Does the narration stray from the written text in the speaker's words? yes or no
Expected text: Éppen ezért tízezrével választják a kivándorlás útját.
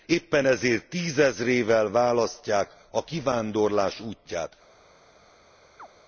no